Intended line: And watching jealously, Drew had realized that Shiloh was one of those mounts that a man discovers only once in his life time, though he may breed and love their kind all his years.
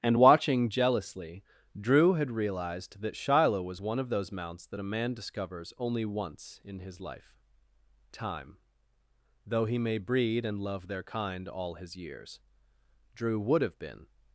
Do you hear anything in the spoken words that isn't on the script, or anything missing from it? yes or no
yes